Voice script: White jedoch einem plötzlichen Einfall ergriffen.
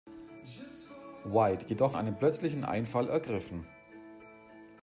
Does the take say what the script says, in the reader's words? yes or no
yes